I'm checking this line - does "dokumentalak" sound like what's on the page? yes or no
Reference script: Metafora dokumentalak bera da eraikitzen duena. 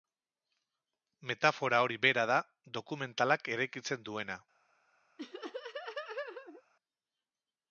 no